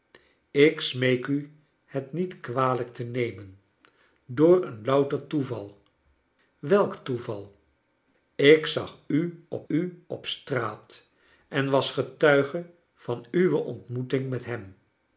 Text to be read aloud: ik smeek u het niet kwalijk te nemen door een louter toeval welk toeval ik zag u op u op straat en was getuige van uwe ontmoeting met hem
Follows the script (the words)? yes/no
yes